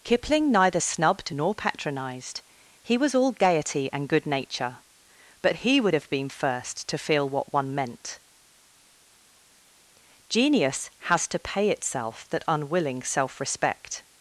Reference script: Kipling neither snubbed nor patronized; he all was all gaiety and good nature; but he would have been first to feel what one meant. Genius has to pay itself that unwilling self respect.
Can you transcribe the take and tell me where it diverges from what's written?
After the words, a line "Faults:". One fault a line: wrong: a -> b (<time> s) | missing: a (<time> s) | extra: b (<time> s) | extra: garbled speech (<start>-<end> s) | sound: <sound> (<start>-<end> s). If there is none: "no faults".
Kipling neither snubbed nor patronized; he was all gaiety and good nature; but he would have been first to feel what one meant. Genius has to pay itself that unwilling self respect.
Faults:
missing: all (3.0 s)